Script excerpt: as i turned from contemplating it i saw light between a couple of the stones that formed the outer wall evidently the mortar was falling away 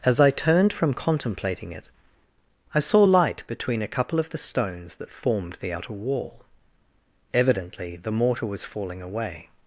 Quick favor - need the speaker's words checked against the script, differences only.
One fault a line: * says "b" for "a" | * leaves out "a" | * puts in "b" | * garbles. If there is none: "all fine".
all fine